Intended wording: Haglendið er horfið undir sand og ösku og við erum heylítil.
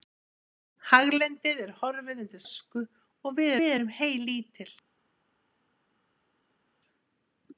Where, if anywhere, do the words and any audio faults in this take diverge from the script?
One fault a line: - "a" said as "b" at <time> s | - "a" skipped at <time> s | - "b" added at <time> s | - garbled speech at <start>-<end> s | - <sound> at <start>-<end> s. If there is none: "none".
- "sand" said as "ösku" at 2.4 s
- "ösku og" said as "við" at 3.4 s